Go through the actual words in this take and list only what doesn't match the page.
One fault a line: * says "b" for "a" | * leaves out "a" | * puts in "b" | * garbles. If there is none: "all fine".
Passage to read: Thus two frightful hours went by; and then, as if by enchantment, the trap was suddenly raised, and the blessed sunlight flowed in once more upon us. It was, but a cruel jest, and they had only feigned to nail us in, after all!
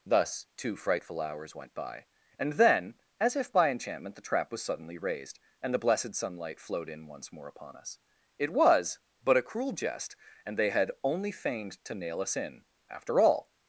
all fine